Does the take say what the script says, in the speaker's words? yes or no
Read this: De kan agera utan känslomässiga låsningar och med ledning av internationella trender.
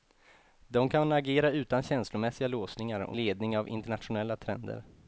no